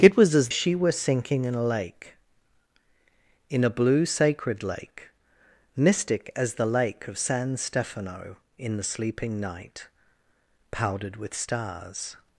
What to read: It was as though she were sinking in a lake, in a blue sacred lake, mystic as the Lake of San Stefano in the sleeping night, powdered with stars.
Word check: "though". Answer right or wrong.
wrong